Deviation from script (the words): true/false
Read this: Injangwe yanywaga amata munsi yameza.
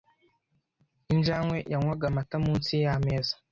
false